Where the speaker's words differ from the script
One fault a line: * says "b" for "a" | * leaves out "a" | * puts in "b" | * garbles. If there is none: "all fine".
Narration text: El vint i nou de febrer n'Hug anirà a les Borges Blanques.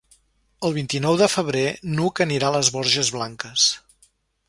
all fine